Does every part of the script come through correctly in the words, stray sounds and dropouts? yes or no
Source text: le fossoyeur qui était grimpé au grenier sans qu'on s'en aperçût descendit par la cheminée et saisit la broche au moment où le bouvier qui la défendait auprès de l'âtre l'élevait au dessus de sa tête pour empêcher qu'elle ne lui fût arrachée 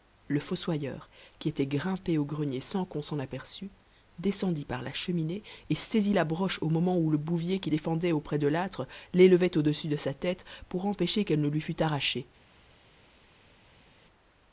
no